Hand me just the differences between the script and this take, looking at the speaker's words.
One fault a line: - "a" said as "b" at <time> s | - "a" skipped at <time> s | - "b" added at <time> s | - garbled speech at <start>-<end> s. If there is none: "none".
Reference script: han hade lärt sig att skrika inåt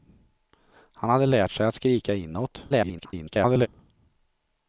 - garbled speech at 2.7-3.7 s